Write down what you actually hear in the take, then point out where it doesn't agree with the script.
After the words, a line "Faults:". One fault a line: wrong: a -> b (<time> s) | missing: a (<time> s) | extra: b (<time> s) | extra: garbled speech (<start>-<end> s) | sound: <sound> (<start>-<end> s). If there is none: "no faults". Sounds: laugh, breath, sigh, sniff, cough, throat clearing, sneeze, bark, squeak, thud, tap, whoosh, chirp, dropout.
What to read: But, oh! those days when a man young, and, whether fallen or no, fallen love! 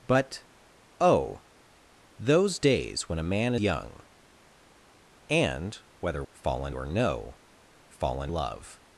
But, oh! those days when a man young, and, whether fallen or no, fallen love!
Faults:
no faults